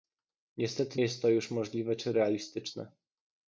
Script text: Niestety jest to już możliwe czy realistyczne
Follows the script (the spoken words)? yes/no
yes